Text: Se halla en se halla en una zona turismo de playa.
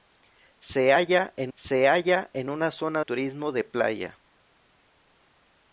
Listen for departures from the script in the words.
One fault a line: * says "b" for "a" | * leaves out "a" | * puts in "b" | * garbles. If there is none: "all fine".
all fine